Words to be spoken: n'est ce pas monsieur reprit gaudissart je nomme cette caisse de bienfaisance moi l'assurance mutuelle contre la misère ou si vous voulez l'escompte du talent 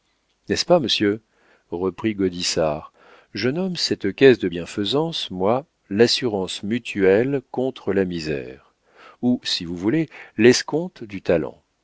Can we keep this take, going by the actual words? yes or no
yes